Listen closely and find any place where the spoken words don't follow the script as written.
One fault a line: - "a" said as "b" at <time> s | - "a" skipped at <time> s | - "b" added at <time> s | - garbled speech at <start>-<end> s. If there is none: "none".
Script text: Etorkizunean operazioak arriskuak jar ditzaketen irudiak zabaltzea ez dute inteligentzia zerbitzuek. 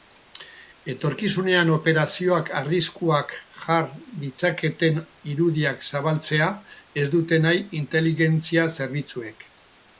- "nahi" added at 7.5 s